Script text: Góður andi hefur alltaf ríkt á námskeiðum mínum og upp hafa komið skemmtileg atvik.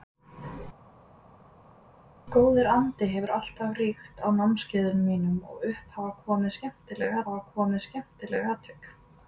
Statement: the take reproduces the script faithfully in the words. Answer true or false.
false